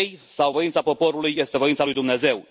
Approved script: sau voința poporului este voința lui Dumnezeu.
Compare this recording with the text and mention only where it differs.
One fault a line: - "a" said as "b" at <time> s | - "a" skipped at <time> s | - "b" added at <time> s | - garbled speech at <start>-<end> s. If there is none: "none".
none